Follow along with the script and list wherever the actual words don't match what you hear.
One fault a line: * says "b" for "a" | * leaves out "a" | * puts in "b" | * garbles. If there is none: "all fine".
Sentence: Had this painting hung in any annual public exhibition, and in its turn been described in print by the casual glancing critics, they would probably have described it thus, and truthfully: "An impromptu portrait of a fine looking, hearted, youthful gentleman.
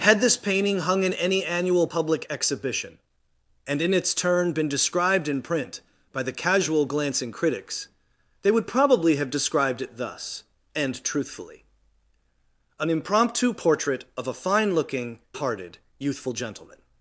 all fine